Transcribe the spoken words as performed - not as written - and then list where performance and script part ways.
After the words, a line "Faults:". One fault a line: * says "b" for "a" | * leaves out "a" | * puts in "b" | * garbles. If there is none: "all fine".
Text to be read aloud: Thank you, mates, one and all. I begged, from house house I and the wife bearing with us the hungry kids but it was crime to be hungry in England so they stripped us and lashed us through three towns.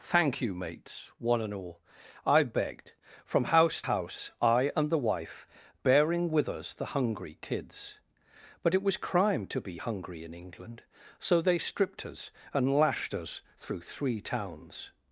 Thank you, mates, one and all. I begged, from house house I and the wife bearing with us the hungry kids but it was crime to be hungry in England so they stripped us and lashed us through three towns.
Faults:
all fine